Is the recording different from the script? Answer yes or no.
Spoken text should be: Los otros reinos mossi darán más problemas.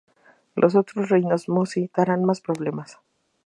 no